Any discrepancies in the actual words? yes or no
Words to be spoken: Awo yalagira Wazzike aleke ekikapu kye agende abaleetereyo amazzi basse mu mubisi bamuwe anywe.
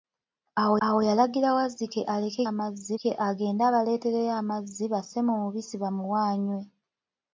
yes